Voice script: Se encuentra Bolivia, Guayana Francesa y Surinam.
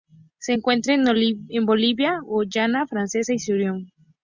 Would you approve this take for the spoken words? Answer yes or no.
no